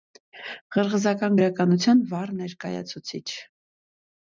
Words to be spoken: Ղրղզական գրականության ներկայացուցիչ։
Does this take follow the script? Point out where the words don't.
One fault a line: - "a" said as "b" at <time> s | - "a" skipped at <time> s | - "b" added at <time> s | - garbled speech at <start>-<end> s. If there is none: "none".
- "վառ" added at 2.2 s